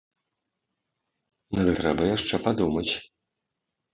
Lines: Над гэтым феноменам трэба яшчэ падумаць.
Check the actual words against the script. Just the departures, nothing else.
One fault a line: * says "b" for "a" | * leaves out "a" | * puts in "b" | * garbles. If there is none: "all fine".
* leaves out "гэтым феноменам"